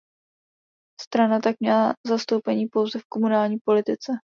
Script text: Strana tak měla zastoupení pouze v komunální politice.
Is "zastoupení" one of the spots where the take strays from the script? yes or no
no